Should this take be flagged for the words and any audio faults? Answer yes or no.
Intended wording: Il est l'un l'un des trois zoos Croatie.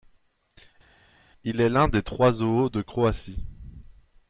yes